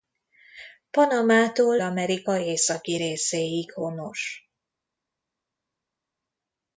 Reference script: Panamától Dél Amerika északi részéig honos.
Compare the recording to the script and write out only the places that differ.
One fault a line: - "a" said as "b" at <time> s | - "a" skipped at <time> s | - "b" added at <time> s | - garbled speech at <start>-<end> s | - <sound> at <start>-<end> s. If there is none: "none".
- "Dél" skipped at 1.8 s